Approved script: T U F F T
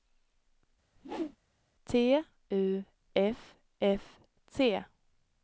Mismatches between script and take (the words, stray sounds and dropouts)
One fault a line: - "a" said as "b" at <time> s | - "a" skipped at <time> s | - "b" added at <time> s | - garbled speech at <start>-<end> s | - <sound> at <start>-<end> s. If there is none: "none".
- whoosh at 1.0-1.4 s